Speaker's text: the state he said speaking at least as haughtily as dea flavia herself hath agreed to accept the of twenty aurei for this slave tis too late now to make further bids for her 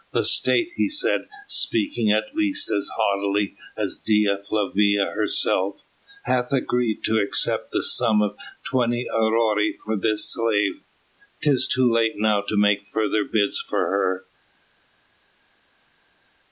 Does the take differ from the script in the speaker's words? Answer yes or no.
yes